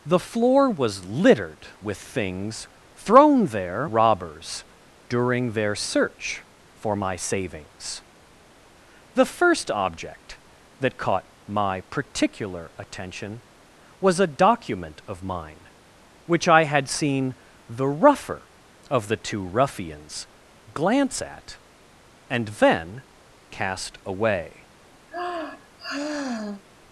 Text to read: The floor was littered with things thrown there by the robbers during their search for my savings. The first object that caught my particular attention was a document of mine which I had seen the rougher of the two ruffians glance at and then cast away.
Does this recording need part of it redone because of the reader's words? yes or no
yes